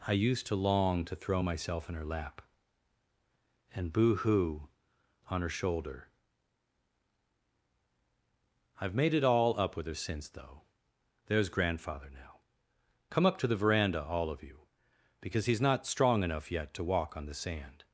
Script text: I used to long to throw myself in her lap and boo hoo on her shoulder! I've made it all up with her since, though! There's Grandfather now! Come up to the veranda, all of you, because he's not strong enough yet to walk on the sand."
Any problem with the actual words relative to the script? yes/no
no